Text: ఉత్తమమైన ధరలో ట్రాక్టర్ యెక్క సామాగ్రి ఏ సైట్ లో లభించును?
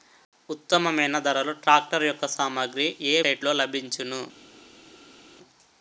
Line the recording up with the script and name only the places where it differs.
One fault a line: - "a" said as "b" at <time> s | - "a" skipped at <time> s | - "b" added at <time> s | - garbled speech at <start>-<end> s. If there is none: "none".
none